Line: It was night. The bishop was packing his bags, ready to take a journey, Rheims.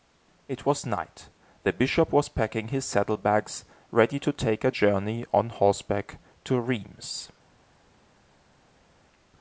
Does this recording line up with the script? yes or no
no